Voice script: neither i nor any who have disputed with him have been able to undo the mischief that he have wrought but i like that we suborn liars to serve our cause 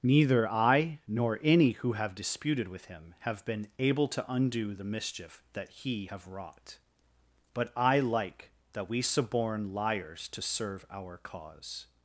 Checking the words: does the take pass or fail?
pass